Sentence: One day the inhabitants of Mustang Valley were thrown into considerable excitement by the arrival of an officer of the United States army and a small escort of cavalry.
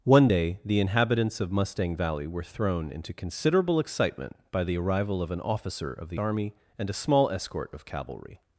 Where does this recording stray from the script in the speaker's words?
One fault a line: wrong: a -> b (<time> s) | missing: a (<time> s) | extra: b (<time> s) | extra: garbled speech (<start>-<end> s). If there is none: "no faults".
missing: United States (6.2 s)